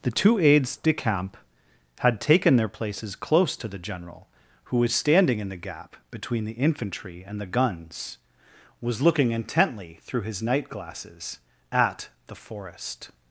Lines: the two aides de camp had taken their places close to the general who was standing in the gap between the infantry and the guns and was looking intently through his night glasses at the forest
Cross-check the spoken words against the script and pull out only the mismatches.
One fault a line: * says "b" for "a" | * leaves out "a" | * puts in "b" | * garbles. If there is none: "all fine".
* leaves out "and"